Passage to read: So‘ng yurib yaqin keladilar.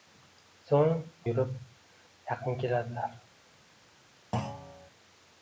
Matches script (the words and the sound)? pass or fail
fail